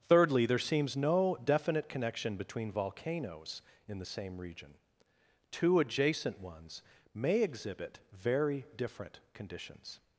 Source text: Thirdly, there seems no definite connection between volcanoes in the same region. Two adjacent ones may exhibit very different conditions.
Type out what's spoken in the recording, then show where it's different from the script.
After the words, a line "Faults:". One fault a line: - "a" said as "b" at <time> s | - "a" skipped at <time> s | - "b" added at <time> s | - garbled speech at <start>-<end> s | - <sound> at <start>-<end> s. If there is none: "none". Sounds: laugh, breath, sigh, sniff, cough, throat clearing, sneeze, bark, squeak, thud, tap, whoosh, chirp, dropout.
Thirdly, there seems no definite connection between volcanoes in the same region. Two adjacent ones may exhibit very different conditions.
Faults:
none